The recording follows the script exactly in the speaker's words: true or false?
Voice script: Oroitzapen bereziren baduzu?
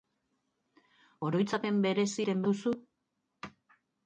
true